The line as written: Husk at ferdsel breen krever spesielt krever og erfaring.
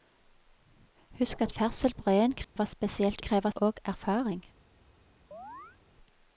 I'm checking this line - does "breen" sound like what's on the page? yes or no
yes